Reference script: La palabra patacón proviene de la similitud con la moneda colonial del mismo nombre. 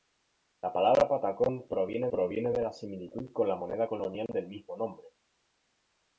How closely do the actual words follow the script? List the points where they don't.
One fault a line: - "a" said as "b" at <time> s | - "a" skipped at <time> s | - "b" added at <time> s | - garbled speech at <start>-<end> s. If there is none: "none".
- "proviene" added at 2.1 s